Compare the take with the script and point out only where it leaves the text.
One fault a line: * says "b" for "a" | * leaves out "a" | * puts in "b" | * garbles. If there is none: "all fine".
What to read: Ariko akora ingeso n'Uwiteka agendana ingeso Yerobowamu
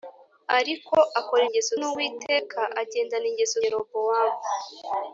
all fine